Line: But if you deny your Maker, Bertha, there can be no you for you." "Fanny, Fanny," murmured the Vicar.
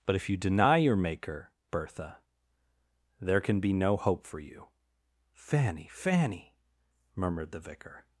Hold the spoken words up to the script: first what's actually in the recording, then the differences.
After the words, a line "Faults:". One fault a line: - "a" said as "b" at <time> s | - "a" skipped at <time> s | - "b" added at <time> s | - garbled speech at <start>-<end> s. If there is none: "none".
But if you deny your Maker, Bertha, there can be no hope for you." "Fanny, Fanny," murmured the Vicar.
Faults:
- "you" said as "hope" at 4.0 s